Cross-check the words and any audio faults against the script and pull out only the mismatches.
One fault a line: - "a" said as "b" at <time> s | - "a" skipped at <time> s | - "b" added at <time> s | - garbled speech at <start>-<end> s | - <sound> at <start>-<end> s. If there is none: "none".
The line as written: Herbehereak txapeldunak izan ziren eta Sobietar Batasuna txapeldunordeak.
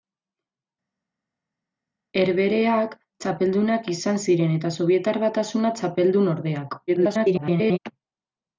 - garbled speech at 6.9-7.8 s